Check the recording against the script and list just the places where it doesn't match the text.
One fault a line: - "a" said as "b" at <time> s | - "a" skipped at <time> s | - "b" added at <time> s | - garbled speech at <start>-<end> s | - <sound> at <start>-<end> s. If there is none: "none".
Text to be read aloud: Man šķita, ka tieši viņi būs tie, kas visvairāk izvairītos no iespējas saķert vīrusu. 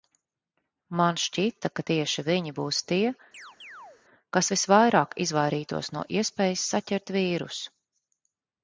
- chirp at 3.3-4.0 s